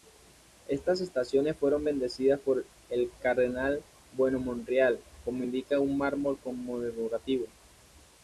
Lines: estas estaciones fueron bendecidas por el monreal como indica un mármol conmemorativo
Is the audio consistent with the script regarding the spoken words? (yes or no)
no